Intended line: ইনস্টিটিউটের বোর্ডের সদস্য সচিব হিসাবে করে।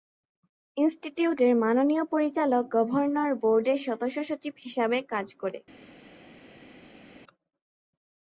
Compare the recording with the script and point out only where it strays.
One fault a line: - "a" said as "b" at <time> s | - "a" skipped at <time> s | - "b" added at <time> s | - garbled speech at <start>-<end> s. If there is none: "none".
- "মাননীয় পরিচালক গভর্নর" added at 1.6 s
- "কাজ" added at 5.1 s